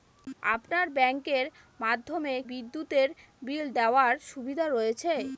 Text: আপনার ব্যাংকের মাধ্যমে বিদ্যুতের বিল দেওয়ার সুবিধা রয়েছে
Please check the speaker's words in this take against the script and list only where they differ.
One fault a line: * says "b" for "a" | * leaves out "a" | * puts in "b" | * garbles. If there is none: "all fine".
all fine